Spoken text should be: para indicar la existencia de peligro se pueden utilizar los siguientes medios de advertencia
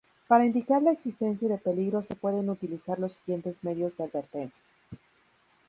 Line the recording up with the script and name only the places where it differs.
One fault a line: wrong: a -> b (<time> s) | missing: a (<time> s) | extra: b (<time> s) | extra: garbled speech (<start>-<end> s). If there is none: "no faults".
no faults